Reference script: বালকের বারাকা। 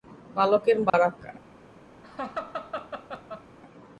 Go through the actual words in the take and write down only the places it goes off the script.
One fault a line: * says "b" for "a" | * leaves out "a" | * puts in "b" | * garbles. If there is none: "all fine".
all fine